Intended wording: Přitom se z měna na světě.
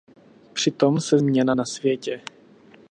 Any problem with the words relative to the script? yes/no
no